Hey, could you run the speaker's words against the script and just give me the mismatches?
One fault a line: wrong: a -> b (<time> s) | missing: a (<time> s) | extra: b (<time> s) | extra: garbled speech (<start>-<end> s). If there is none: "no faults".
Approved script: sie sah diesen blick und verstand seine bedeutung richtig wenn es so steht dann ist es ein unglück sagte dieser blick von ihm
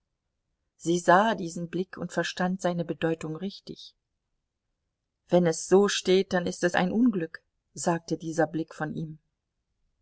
no faults